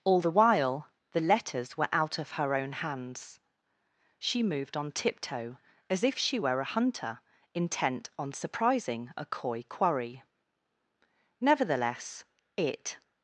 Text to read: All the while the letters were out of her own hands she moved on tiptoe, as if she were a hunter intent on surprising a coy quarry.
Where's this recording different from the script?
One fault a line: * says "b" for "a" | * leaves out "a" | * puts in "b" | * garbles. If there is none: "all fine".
* puts in "Nevertheless it"